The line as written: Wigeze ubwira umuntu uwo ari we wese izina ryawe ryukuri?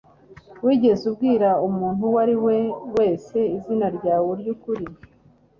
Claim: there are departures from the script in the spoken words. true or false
false